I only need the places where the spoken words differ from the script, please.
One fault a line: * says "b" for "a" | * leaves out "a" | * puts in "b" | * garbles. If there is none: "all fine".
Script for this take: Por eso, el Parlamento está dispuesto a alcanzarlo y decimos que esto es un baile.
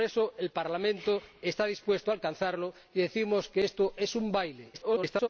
* garbles